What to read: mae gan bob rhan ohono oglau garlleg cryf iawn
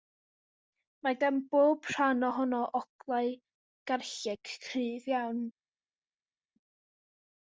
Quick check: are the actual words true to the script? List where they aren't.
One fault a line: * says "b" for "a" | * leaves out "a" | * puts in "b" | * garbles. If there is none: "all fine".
all fine